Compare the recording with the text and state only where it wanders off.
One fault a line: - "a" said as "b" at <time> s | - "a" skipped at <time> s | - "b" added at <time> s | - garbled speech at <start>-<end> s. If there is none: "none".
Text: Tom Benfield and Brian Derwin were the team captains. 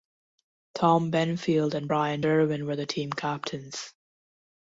none